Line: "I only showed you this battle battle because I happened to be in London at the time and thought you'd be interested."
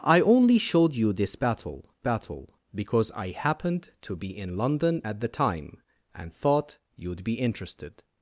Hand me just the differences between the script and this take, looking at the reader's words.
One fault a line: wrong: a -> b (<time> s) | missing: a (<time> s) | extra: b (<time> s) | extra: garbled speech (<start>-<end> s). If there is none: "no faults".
no faults